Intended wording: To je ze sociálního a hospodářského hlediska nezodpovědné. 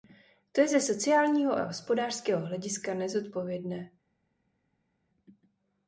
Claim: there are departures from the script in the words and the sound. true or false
false